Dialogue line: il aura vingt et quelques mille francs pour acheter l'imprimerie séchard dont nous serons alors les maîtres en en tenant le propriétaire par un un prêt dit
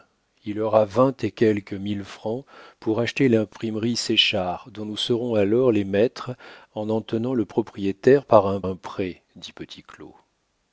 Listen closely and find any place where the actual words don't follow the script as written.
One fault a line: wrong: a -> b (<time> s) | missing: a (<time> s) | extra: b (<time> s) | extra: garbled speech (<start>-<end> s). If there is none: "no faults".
no faults